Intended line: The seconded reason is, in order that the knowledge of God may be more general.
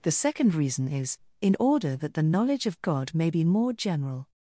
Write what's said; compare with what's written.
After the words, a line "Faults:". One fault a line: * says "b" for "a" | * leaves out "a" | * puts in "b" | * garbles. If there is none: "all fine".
The second reason is, in order that the knowledge of God may be more general.
Faults:
* says "second" for "seconded"